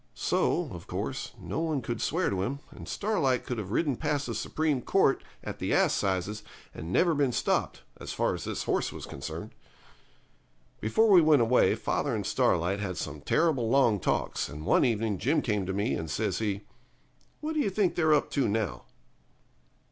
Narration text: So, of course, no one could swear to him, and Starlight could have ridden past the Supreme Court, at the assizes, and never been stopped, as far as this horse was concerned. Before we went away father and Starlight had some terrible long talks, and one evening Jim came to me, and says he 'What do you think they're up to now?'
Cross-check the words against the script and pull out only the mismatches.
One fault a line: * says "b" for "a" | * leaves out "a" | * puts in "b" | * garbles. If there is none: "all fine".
all fine